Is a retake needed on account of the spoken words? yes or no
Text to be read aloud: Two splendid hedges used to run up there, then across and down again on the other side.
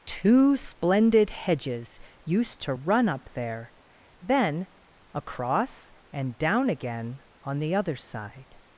no